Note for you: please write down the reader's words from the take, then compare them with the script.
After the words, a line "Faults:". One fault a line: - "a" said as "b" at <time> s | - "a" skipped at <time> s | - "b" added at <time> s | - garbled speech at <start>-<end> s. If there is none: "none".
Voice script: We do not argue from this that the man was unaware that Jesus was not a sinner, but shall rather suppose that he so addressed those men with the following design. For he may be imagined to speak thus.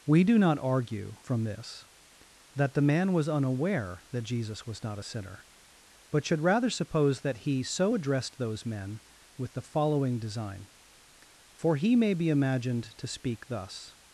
We do not argue from this that the man was unaware that Jesus was not a sinner, but should rather suppose that he so addressed those men with the following design. For he may be imagined to speak thus.
Faults:
- "shall" said as "should" at 6.2 s